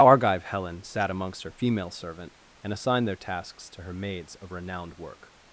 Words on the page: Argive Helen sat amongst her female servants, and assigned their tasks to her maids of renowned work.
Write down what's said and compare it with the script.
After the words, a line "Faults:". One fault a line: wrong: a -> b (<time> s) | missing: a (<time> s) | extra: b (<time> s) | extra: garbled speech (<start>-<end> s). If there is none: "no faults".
Argive Helen sat amongst her female servant, and assigned their tasks to her maids of renowned work.
Faults:
wrong: servants -> servant (1.9 s)